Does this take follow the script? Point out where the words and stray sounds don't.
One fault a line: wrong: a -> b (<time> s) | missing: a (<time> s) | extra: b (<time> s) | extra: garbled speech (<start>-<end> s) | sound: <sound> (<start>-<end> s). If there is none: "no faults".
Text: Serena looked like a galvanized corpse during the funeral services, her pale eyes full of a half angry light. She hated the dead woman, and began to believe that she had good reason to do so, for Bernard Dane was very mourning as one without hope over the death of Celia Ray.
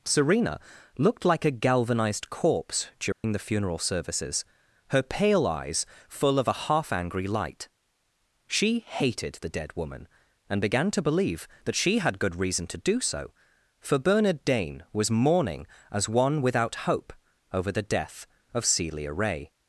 sound: dropout (3.1-3.2 s)
missing: very (15.1 s)